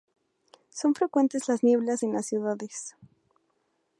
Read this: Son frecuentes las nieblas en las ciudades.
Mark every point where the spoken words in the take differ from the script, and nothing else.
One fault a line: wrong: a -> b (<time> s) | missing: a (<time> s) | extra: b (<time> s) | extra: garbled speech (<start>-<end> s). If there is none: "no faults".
no faults